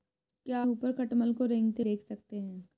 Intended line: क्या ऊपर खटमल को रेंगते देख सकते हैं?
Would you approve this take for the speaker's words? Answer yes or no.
yes